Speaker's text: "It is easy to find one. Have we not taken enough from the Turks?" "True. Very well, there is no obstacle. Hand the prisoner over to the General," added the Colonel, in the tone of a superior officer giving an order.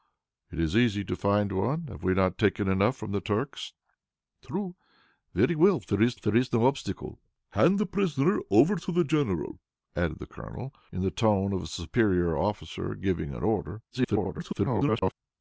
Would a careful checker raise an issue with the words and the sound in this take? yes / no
yes